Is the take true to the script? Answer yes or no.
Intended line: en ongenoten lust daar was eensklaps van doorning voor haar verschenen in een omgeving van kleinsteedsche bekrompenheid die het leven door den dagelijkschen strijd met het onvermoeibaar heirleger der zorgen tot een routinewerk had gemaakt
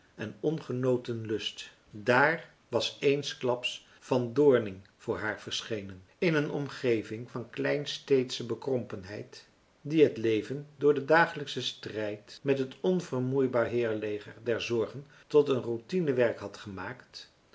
yes